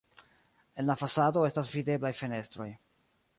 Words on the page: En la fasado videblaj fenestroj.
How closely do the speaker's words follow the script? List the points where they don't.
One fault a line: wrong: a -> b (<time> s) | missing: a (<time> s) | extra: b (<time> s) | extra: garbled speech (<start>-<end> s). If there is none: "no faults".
extra: estas (1.5 s)